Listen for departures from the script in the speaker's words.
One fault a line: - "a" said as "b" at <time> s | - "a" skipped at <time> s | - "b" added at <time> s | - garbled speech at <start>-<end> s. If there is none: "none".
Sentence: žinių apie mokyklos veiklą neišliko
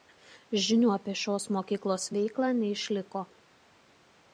- "šios" added at 1.2 s